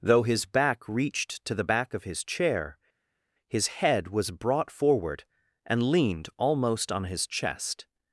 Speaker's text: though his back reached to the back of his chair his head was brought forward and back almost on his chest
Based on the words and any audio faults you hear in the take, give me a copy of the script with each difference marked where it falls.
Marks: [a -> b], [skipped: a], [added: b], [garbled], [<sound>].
though his back reached to the back of his chair his head was brought forward and [back -> leaned] almost on his chest